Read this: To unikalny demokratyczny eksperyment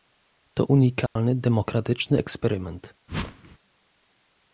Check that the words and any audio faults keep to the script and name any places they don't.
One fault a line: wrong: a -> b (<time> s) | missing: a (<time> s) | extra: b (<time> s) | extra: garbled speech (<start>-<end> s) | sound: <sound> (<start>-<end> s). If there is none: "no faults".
sound: dropout (1.1-1.2 s)
sound: whoosh (3.1-3.6 s)